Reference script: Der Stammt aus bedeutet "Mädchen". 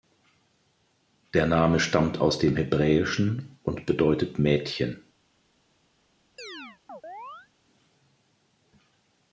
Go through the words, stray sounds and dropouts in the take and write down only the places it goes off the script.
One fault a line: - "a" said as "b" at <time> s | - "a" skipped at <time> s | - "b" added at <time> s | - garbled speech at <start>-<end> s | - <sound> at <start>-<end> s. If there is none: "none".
- "Name" added at 1.4 s
- "dem Hebräischen und" added at 2.4 s
- chirp at 6.4-7.5 s